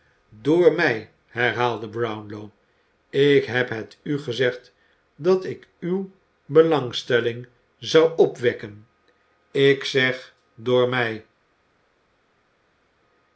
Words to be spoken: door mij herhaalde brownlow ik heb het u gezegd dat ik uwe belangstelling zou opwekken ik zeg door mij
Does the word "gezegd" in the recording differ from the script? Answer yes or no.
no